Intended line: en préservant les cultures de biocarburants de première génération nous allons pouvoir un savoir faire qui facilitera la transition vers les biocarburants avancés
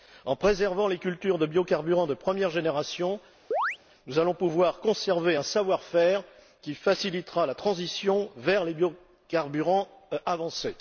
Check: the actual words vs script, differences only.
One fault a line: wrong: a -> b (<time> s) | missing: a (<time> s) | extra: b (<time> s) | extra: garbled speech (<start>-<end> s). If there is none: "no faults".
extra: conserver (4.8 s)